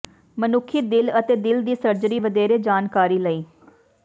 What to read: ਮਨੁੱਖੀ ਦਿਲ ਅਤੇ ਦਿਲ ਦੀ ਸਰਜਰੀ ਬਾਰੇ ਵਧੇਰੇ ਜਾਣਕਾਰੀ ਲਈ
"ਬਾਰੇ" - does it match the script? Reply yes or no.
no